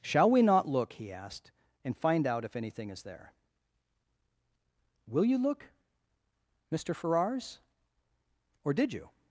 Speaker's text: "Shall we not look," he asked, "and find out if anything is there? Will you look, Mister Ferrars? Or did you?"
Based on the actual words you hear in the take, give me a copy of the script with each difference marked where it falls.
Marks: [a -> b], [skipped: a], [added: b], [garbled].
"Shall we not look," he asked, "and find out if anything is there? Will you look, Mister Ferrars? Or did you?"